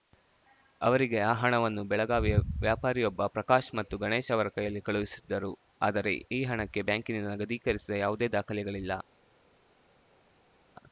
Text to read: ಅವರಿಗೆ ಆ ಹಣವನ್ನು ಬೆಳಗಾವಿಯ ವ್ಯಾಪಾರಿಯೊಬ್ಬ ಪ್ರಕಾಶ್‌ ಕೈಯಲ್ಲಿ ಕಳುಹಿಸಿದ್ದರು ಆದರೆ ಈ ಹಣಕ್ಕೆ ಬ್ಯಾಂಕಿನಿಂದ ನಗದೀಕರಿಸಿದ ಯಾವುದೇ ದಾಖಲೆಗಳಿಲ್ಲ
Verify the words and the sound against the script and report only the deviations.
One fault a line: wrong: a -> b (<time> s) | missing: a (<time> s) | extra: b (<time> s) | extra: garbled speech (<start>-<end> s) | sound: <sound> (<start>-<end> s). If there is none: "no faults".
extra: ಮತ್ತು ಗಣೇಶ್ ಅವರ (3.8 s)